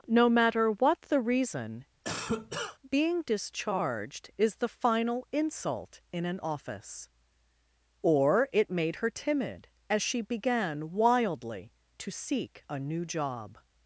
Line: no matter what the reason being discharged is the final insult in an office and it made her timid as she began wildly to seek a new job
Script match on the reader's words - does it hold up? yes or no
no